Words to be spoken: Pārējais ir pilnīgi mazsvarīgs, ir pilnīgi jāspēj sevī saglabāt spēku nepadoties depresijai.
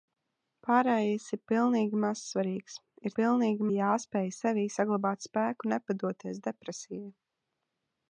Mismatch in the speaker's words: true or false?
false